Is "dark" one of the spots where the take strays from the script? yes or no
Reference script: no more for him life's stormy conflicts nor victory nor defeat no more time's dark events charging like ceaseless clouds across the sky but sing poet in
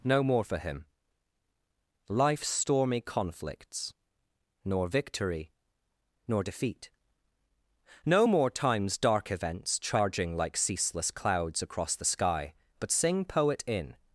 no